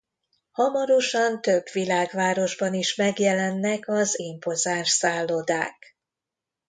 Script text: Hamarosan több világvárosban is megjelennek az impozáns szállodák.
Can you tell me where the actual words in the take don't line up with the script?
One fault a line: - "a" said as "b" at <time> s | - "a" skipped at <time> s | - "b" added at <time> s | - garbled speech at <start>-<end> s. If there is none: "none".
none